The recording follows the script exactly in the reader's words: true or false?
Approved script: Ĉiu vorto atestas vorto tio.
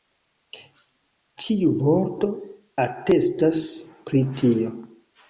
false